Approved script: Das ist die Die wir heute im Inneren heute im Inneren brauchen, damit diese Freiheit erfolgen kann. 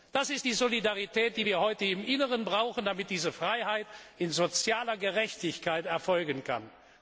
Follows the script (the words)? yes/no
no